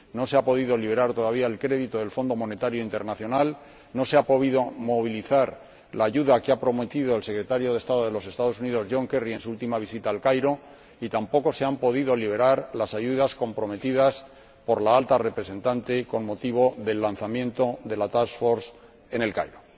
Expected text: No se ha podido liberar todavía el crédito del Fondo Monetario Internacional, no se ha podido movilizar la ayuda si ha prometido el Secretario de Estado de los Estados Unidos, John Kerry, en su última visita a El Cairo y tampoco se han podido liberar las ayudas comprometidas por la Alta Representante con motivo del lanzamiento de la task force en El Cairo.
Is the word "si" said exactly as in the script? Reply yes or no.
no